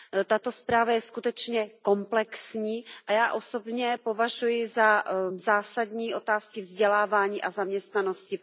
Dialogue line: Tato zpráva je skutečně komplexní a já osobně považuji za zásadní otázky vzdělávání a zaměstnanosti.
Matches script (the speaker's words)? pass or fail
pass